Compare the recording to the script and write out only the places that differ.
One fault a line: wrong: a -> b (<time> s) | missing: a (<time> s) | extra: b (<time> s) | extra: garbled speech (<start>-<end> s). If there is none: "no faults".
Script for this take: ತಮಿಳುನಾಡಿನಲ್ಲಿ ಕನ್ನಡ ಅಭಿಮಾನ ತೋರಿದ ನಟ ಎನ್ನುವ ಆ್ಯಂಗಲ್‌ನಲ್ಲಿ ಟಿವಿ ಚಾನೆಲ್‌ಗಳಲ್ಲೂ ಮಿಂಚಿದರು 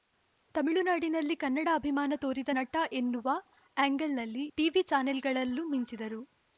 no faults